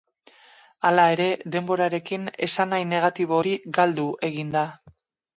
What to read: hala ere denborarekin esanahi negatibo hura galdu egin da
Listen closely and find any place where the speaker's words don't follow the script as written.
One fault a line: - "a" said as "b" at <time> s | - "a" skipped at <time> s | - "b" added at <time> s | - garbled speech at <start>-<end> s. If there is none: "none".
- "hura" said as "hori" at 3.4 s